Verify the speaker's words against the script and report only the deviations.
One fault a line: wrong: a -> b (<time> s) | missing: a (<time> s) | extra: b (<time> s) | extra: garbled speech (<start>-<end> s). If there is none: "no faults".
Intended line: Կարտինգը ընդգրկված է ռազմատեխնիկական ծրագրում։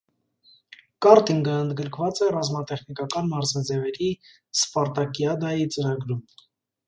extra: մարզաձևերի սպարտակիադայի (3.4 s)